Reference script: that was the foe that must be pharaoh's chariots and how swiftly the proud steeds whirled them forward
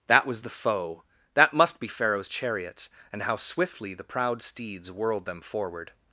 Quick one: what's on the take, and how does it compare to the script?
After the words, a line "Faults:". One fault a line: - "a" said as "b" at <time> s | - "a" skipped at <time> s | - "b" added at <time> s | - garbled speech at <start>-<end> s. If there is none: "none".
that was the foe that must be pharaoh's chariots and how swiftly the proud steeds whirled them forward
Faults:
none